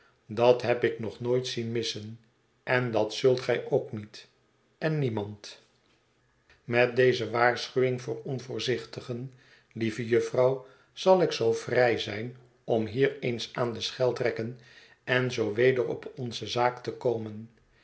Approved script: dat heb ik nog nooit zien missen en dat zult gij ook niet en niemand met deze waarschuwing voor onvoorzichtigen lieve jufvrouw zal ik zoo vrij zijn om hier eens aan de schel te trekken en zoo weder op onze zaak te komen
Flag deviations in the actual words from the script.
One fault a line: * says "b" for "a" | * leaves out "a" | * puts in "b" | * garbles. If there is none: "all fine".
* leaves out "te"